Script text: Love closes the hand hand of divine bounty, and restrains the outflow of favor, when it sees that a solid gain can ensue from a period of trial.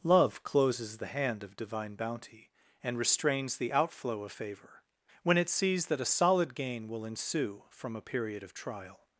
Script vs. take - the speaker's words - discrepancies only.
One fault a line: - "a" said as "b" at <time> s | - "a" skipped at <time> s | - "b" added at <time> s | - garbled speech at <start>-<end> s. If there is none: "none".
- "hand" skipped at 1.4 s
- "can" said as "will" at 6.9 s